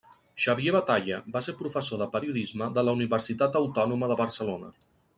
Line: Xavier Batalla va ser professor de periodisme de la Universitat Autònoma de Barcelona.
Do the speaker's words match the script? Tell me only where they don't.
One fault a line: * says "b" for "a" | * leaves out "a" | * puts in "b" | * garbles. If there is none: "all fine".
all fine